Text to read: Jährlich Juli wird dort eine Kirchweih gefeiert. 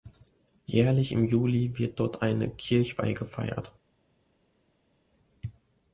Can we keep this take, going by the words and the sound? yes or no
no